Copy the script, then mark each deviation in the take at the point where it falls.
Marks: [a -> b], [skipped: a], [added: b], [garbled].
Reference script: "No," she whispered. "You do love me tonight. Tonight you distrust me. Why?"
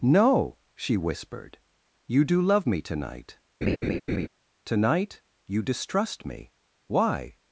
"No," she whispered. "You do love me tonight. Tonight you distrust me. Why?"